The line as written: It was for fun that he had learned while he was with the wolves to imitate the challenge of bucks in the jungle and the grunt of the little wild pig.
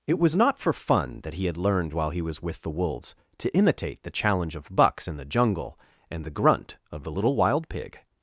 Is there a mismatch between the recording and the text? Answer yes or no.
yes